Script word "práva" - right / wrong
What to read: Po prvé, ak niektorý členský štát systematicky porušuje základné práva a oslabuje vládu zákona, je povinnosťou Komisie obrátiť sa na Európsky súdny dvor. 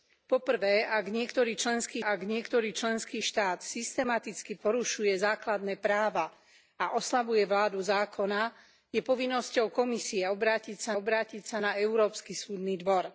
right